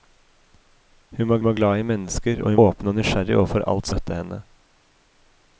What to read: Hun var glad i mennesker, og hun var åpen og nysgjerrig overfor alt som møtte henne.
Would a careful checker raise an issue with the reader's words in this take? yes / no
yes